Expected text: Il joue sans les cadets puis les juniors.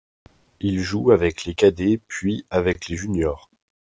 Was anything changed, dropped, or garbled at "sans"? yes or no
yes